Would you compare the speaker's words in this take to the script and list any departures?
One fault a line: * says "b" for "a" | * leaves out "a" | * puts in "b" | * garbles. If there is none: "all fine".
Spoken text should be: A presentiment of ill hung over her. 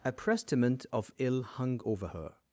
all fine